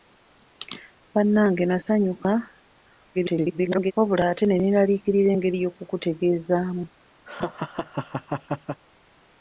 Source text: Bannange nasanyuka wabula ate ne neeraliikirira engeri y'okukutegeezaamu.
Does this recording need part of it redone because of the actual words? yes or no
yes